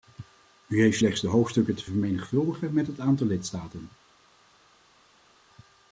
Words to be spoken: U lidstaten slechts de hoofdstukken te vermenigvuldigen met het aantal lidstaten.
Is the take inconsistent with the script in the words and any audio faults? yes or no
yes